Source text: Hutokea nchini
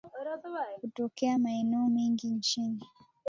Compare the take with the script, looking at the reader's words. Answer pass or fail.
fail